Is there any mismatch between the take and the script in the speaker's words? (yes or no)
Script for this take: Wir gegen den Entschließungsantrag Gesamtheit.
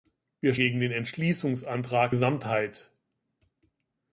no